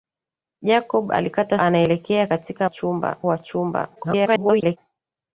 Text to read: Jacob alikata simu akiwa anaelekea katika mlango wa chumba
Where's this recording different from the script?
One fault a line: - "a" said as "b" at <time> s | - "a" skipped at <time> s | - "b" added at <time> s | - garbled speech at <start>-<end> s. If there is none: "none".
- "simu akiwa" skipped at 1.6 s
- "mlango" said as "chumba" at 2.7 s
- garbled speech at 4.0-4.8 s